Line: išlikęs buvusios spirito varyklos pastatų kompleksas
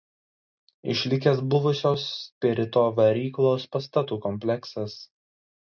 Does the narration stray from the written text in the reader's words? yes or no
no